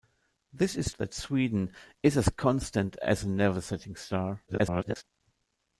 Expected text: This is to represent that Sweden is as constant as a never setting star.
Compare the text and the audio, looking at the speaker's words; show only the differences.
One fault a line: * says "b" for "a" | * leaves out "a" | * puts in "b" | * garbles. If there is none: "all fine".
* leaves out "to represent"
* garbles